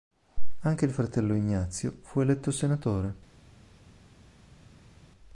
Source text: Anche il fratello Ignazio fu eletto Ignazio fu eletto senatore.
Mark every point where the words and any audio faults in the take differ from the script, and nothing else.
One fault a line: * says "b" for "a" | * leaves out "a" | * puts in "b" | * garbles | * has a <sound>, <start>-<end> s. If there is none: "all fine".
* leaves out "Ignazio fu eletto"